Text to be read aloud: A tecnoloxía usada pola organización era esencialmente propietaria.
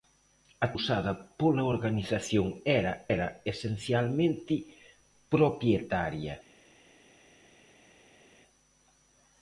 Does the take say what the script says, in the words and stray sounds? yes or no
no